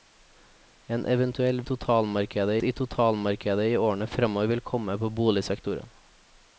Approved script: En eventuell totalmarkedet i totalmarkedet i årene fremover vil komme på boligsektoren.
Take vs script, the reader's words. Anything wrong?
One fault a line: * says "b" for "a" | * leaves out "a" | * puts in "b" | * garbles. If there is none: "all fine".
all fine